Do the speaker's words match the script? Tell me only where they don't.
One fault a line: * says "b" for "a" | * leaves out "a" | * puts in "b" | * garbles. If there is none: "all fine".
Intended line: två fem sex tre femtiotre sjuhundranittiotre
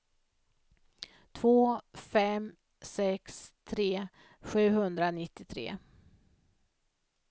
* leaves out "femtiotre"